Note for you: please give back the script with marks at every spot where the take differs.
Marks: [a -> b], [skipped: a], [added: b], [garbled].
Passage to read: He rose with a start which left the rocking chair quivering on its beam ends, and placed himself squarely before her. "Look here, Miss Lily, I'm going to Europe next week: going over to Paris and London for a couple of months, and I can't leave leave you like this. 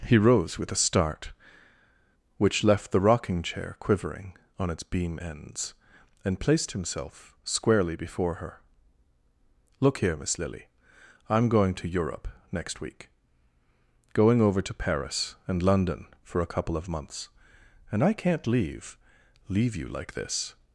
He rose with a start which left the rocking chair quivering on its beam ends, and placed himself squarely before her. "Look here, Miss Lily, I'm going to Europe next week: going over to Paris and London for a couple of months, and I can't leave leave you like this.